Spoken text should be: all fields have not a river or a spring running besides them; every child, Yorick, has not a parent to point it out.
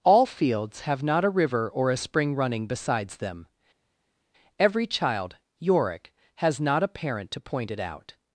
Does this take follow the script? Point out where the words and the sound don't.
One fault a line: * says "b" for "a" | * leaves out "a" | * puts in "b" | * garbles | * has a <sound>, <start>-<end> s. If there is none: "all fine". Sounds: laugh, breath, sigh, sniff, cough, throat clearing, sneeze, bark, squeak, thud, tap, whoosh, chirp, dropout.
all fine